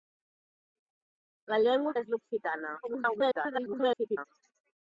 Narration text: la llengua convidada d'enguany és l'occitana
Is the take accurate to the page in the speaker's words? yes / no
no